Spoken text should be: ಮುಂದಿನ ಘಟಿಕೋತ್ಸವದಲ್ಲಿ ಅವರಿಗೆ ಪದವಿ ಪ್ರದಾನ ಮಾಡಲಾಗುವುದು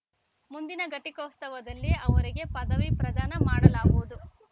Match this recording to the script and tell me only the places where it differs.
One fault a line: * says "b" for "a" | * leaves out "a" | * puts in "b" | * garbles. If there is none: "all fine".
all fine